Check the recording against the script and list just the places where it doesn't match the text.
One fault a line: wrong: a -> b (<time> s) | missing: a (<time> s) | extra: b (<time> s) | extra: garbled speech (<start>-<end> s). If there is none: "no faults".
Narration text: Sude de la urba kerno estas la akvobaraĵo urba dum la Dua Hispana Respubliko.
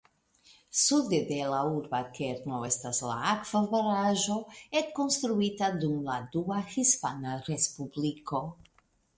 wrong: urba -> ekkonstruita (4.8 s)